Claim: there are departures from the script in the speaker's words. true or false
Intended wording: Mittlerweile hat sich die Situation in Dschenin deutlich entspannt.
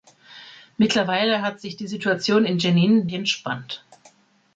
true